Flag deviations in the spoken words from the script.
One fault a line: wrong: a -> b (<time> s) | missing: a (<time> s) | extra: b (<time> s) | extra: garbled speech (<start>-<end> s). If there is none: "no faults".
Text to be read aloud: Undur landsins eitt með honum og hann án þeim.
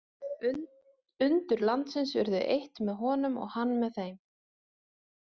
extra: urðu (2.2 s)
wrong: án -> með (3.8 s)